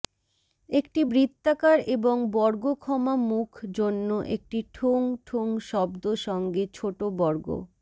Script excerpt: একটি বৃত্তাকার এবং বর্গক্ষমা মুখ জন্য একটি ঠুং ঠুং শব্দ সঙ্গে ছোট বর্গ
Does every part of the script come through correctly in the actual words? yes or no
yes